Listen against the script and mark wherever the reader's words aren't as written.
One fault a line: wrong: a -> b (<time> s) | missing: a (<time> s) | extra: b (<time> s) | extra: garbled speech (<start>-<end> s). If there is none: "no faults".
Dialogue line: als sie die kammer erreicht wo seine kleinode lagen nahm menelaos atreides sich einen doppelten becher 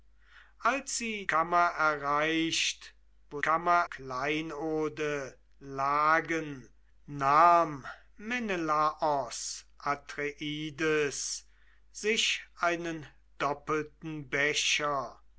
missing: die (1.3 s)
wrong: seine -> kammer (3.4 s)